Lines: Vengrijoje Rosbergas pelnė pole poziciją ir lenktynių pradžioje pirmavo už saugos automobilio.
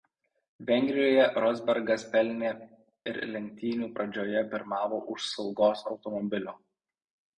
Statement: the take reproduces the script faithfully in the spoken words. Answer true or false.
false